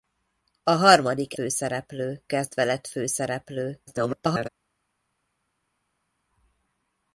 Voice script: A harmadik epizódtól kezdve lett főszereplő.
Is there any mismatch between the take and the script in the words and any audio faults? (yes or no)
yes